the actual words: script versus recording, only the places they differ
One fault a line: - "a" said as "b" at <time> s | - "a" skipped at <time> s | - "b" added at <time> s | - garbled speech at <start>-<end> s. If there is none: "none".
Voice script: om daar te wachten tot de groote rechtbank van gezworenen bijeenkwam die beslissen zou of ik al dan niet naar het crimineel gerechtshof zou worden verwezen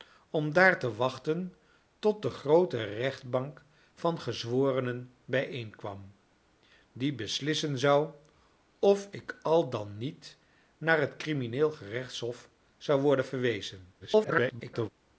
- garbled speech at 14.0-14.9 s